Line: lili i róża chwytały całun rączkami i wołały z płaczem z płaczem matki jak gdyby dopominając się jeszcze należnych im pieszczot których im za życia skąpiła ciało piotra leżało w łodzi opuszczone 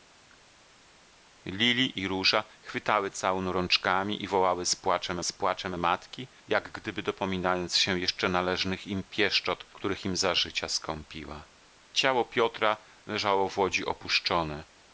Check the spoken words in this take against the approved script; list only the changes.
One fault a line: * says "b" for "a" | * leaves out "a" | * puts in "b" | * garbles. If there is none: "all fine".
all fine